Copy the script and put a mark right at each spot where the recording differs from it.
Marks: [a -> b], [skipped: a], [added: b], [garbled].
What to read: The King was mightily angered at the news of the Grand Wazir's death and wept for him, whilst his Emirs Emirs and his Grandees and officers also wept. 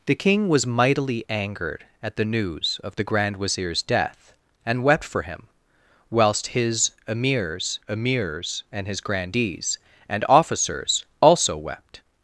The King was mightily angered at the news of the Grand Wazir's death and wept for him, whilst his Emirs Emirs and his Grandees and officers also wept.